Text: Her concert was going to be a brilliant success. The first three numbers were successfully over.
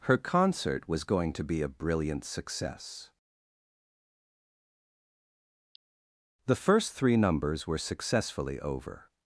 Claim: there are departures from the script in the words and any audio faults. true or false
false